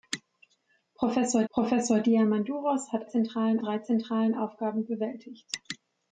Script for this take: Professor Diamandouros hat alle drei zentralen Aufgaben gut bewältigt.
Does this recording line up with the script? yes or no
no